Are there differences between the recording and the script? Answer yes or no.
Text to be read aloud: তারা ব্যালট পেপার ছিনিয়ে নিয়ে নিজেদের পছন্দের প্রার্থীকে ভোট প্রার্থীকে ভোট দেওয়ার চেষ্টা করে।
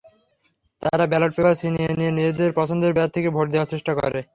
yes